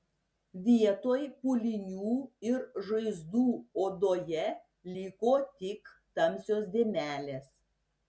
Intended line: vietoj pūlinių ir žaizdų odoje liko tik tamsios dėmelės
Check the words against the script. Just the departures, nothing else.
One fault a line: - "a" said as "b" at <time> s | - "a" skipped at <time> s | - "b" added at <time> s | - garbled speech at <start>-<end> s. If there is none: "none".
none